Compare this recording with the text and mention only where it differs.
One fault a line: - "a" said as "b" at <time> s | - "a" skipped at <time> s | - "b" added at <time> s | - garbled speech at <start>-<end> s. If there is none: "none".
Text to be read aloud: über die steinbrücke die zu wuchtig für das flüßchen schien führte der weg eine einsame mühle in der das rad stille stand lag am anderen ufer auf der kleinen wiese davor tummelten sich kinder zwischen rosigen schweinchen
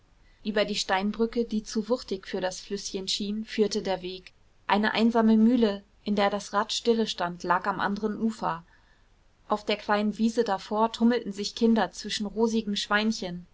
none